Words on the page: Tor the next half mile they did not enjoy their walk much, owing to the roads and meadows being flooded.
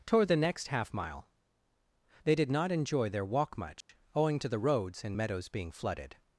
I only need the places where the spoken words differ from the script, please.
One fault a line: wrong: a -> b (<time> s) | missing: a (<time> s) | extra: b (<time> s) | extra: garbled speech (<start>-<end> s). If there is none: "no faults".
wrong: Tor -> Toward (0.1 s)